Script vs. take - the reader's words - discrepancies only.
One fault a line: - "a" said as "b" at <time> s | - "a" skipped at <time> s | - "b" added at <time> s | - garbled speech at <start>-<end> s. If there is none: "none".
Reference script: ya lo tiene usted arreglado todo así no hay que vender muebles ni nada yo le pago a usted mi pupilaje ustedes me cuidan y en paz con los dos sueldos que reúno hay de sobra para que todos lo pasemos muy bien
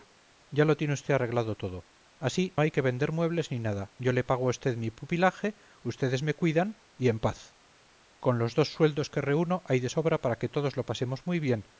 - "no" skipped at 2.5 s